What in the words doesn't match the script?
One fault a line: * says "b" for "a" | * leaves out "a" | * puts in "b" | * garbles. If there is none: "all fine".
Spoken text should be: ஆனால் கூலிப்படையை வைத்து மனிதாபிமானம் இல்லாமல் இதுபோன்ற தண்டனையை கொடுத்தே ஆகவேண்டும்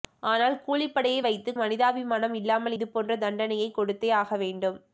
all fine